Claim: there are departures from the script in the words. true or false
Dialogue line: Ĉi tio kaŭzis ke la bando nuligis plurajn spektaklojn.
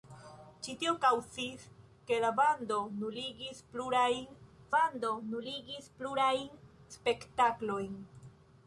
true